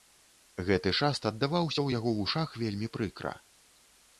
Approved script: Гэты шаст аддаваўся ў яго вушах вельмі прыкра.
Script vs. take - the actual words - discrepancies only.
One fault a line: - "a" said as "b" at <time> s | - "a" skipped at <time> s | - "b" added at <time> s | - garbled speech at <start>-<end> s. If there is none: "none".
none